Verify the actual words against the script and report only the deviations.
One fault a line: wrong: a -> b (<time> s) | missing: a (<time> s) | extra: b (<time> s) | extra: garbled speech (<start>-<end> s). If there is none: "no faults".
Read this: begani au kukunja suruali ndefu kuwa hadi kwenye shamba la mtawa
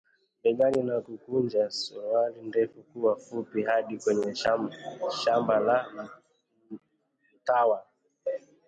wrong: au -> na (0.8 s)
extra: fupi (3.2 s)